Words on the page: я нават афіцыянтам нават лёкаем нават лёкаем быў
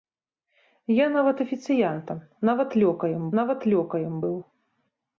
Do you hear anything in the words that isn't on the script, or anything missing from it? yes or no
no